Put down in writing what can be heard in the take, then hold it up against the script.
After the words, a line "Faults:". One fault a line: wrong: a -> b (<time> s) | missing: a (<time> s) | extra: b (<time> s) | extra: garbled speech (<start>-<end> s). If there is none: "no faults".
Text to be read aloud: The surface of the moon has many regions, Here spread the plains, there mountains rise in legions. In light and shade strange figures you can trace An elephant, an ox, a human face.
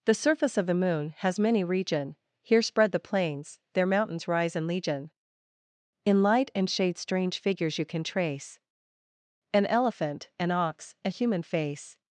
The surface of the moon has many region, Here spread the plains, there mountains rise in legion. In light and shade strange figures you can trace An elephant, an ox, a human face.
Faults:
wrong: regions -> region (1.6 s)
wrong: legions -> legion (4.7 s)